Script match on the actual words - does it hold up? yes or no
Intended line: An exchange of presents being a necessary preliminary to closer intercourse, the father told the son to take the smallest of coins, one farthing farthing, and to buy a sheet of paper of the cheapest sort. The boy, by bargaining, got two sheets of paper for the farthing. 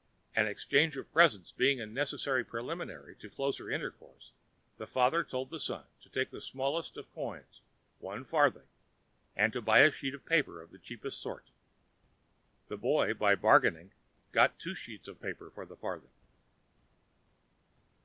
no